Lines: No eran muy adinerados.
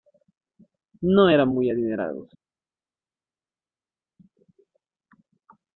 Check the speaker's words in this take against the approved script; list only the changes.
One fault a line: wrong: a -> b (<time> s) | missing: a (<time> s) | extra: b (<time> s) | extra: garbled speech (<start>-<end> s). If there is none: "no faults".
no faults